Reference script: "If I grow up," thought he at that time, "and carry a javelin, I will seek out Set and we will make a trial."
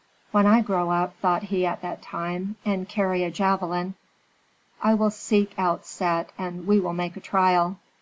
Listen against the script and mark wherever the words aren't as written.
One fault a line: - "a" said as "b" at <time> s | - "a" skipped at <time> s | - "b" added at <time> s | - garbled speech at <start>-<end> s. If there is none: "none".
- "If" said as "When" at 0.3 s